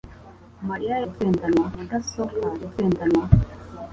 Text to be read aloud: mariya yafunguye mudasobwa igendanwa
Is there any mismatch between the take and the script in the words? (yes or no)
yes